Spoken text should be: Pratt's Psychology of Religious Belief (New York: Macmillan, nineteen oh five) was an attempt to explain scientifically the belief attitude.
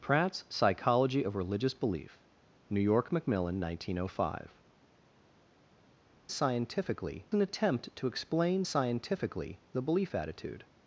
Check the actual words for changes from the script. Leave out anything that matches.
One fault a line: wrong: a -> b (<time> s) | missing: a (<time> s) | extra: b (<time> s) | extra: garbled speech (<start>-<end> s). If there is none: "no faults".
wrong: was -> scientifically (6.3 s)